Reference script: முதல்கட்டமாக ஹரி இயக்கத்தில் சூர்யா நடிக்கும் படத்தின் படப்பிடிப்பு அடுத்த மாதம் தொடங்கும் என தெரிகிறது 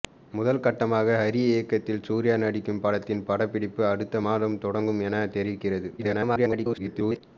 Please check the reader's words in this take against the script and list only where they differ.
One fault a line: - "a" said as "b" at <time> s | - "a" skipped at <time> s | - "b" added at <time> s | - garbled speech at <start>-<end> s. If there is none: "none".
- garbled speech at 6.0-7.2 s